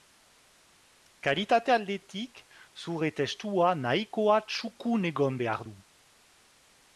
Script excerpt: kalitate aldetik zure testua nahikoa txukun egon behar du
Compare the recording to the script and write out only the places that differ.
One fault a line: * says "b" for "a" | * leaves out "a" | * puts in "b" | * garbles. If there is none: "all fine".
all fine